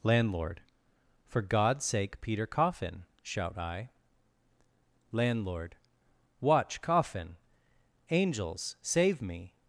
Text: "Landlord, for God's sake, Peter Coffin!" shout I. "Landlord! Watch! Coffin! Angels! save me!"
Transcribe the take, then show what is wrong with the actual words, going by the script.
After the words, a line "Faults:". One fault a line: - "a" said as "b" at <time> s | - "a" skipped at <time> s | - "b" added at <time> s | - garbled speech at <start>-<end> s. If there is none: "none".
"Landlord, for God's sake, Peter Coffin!" shout I. "Landlord! Watch! Coffin! Angels! save me!"
Faults:
none